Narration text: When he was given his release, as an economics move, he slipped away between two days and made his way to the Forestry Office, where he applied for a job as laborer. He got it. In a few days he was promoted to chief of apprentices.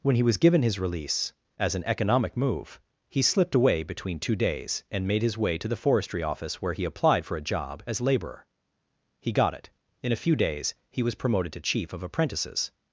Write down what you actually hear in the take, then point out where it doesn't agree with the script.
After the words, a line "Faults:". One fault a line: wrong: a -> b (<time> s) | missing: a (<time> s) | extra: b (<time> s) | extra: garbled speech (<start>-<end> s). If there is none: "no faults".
When he was given his release, as an economic move, he slipped away between two days and made his way to the Forestry Office, where he applied for a job as laborer. He got it. In a few days he was promoted to chief of apprentices.
Faults:
wrong: economics -> economic (1.9 s)